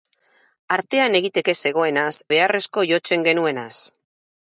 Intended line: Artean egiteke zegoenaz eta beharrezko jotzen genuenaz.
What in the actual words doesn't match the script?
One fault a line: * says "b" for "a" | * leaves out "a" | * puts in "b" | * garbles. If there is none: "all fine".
* leaves out "eta"